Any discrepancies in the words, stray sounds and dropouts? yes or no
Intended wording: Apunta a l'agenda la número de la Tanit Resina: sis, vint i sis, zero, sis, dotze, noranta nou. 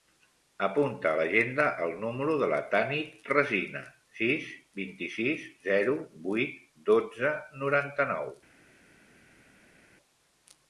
yes